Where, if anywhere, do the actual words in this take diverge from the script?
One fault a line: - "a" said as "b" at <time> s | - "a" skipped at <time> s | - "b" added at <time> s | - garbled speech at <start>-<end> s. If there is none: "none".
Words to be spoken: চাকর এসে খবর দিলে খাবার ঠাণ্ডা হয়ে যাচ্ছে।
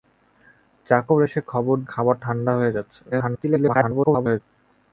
- "দিলে" skipped at 1.8 s
- garbled speech at 3.1-4.4 s